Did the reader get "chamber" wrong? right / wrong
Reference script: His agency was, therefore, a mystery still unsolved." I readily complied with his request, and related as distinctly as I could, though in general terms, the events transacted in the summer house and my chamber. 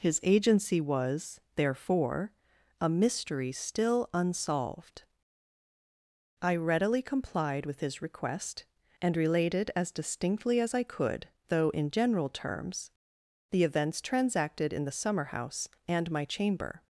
right